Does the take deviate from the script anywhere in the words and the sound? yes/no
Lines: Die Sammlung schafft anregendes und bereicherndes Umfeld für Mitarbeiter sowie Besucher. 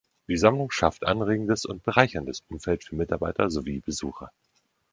no